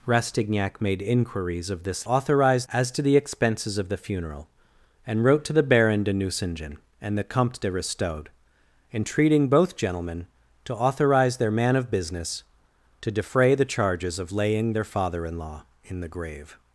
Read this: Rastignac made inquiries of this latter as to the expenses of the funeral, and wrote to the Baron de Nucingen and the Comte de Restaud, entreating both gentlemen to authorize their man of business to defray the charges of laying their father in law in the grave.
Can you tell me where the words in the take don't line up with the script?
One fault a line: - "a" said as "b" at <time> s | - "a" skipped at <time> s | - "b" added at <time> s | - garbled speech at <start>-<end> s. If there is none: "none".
- "latter" said as "authorize" at 2.0 s